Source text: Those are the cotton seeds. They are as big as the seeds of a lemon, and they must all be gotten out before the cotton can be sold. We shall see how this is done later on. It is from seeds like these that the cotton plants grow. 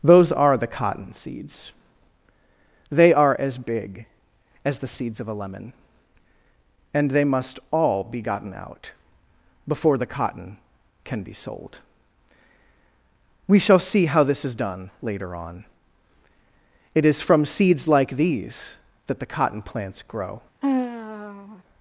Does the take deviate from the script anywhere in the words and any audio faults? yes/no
yes